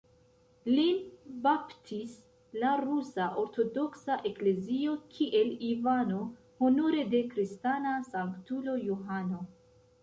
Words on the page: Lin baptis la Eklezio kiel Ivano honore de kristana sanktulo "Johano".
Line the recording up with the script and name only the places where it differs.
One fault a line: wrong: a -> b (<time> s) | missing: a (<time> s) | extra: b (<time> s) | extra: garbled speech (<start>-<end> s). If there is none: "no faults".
extra: Rusa Ortodoksa (2.8 s)